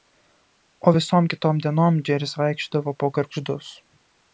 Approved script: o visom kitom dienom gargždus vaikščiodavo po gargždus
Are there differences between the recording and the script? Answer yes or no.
yes